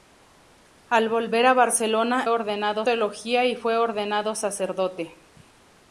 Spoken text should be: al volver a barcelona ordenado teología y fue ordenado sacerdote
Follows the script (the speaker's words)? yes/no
yes